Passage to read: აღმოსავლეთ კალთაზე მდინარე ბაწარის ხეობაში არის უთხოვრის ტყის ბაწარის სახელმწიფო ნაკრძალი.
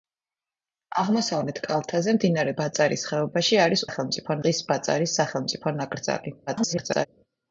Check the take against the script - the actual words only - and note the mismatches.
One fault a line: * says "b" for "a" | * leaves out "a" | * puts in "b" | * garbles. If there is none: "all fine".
* says "სახელმწიფო" for "უთხოვრის"
* garbles